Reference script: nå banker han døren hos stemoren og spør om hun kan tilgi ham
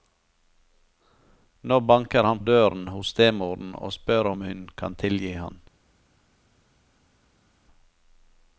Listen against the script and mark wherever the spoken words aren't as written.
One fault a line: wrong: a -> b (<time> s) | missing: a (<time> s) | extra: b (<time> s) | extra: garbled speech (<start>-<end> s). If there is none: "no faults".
no faults